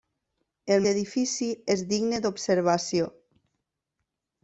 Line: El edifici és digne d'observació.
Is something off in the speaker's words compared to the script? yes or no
no